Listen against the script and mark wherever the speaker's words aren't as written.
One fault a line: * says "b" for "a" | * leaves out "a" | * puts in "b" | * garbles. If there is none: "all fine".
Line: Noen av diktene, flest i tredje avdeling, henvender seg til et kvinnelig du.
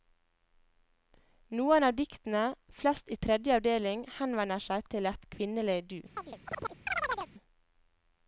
all fine